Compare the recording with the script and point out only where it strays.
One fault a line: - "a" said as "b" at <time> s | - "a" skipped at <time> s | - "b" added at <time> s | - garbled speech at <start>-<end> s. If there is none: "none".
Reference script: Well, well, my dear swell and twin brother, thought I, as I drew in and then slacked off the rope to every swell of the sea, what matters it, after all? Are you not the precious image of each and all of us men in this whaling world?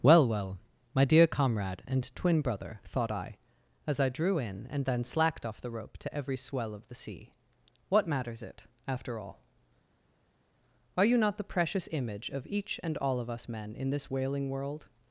- "swell" said as "comrade" at 1.3 s